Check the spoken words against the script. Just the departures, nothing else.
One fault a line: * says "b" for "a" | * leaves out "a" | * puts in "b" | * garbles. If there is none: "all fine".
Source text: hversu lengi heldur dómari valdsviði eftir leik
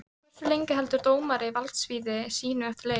* puts in "sínu"